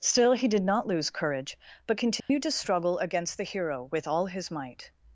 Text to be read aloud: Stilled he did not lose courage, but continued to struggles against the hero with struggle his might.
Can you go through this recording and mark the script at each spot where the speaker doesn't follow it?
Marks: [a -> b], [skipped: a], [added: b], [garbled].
[Stilled -> Still] he did not lose courage, but continued to [struggles -> struggle] against the hero with [struggle -> all] his might.